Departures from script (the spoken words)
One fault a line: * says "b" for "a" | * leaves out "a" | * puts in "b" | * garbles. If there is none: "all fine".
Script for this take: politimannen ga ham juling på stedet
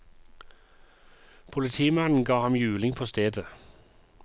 all fine